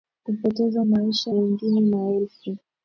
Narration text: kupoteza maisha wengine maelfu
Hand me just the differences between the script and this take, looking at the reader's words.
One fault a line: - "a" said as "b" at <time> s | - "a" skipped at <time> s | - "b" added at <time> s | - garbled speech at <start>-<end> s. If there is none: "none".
none